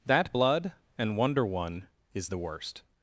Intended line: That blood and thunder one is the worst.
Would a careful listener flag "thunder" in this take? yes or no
yes